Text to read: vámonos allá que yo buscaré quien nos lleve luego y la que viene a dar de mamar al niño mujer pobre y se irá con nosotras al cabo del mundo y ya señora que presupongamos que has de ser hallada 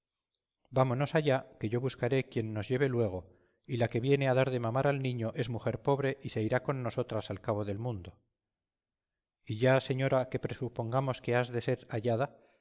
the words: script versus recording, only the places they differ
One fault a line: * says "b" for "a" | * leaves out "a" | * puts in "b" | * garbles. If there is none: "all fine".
* puts in "es"